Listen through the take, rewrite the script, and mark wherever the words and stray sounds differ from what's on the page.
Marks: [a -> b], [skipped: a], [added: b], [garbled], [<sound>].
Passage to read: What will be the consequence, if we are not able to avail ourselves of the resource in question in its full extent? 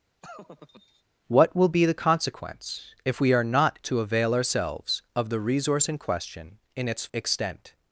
[laugh] What will be the consequence, if we are not [skipped: able] to avail ourselves of the resource in question in its [skipped: full] extent?